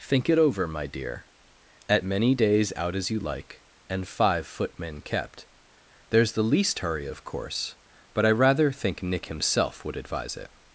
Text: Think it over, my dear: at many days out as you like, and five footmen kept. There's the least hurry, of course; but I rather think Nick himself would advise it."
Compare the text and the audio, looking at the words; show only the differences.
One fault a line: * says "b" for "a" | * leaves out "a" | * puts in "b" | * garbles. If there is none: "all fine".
all fine